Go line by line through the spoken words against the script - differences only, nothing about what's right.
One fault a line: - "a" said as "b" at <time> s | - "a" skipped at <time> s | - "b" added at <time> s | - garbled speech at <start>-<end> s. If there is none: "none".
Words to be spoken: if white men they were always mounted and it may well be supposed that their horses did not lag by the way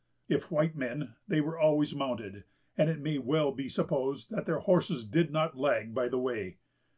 none